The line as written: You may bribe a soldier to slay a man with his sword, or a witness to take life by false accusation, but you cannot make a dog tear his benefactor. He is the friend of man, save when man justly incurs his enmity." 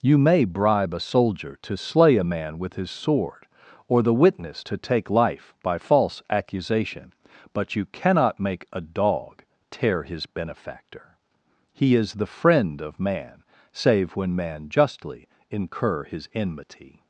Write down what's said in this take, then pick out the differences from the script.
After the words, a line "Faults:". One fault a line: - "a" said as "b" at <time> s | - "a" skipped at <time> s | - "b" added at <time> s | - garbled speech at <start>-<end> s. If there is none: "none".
You may bribe a soldier to slay a man with his sword, or the witness to take life by false accusation, but you cannot make a dog tear his benefactor. He is the friend of man, save when man justly incur his enmity."
Faults:
- "a" said as "the" at 4.0 s
- "incurs" said as "incur" at 15.5 s